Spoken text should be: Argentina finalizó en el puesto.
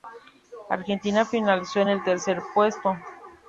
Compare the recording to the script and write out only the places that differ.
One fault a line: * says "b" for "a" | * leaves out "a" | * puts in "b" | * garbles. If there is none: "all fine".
* puts in "tercer"